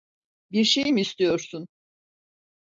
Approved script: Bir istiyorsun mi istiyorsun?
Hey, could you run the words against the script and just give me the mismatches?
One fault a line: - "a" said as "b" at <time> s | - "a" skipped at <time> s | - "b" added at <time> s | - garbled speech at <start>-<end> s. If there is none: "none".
- "istiyorsun" said as "şey" at 0.6 s